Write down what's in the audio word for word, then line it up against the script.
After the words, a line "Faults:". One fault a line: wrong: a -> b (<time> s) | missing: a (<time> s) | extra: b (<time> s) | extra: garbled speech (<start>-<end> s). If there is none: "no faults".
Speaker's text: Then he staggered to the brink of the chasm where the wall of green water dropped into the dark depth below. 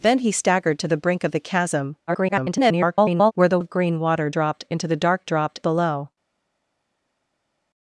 Then he staggered to the brink of the chasm [garbled] where the of green water dropped into the dark dropped below.
Faults:
extra: garbled speech (2.1-3.3 s)
missing: wall (3.6 s)
wrong: depth -> dropped (5.2 s)